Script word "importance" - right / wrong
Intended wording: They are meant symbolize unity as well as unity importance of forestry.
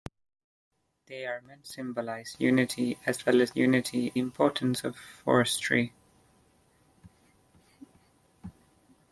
right